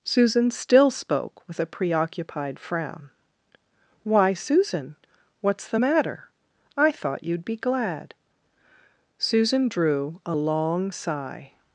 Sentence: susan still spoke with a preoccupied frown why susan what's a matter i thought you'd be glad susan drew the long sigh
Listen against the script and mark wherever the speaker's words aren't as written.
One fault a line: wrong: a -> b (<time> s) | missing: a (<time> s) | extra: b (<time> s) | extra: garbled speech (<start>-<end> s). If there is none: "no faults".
wrong: a -> the (5.7 s)
wrong: the -> a (10.2 s)